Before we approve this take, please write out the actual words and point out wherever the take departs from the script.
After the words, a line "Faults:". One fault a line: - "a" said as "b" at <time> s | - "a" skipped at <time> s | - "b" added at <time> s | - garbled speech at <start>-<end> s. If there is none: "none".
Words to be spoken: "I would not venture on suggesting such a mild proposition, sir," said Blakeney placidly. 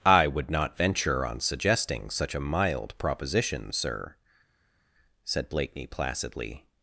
"I would not venture on suggesting such a mild proposition, sir," said Blakeney placidly.
Faults:
none